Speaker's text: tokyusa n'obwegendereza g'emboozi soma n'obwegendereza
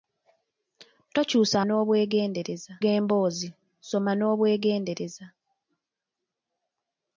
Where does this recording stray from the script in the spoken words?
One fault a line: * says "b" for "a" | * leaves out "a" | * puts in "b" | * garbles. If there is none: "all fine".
all fine